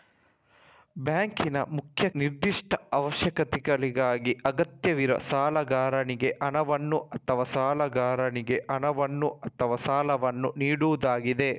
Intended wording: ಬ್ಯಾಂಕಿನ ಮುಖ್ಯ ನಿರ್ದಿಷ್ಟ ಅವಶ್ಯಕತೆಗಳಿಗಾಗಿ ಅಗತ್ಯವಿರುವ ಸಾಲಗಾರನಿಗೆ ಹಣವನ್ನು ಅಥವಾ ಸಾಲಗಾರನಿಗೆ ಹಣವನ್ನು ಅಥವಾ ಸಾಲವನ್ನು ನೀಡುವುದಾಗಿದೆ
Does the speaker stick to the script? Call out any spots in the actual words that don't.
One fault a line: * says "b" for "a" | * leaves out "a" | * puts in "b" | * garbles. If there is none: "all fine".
all fine